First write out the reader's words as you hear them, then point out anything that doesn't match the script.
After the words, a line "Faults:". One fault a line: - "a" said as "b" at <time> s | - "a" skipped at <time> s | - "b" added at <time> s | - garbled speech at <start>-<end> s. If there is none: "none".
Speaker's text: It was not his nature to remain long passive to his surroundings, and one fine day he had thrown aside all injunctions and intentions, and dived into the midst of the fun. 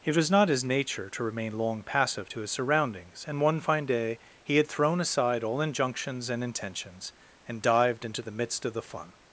It was not his nature to remain long passive to his surroundings, and one fine day he had thrown aside all injunctions and intentions, and dived into the midst of the fun.
Faults:
none